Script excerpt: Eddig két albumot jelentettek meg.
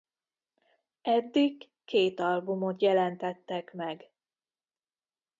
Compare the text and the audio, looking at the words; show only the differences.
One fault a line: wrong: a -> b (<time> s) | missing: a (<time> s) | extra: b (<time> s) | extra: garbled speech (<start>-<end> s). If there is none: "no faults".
no faults